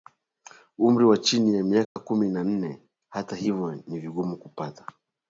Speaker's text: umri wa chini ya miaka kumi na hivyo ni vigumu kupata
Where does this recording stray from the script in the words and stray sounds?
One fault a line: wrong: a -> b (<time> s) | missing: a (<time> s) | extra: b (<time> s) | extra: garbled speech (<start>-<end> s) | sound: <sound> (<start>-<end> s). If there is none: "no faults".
sound: dropout (1.8-2.0 s)
extra: nne Hata (2.4 s)